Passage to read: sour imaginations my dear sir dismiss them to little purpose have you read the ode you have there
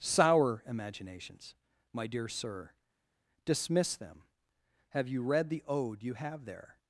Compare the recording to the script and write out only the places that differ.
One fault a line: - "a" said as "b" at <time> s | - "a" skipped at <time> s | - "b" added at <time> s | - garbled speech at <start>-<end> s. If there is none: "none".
- "to little purpose" skipped at 4.2 s